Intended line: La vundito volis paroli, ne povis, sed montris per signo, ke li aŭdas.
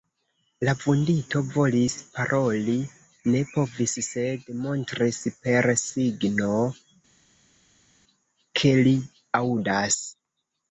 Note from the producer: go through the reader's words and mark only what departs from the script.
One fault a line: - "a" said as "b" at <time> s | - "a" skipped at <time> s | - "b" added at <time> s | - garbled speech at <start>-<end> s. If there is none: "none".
none